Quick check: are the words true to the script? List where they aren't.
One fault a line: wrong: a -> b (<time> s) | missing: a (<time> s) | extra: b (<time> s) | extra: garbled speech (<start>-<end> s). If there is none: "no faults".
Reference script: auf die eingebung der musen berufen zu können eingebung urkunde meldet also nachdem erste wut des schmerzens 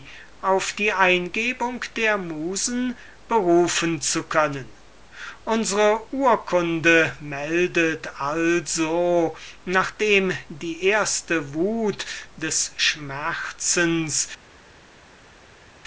wrong: eingebung -> unsre (5.5 s)
extra: die (10.5 s)